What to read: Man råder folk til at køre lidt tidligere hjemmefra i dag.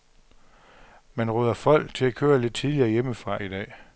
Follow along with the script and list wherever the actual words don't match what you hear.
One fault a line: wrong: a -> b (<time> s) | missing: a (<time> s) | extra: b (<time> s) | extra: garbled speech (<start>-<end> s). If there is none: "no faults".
no faults